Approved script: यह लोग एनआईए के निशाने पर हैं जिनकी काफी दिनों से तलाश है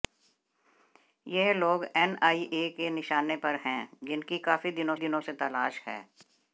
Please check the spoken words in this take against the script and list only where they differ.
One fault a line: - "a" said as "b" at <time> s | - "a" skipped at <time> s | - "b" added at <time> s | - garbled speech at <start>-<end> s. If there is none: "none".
- "दिनों" added at 5.0 s